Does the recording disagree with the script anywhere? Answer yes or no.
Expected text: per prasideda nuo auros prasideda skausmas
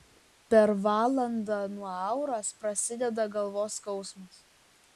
yes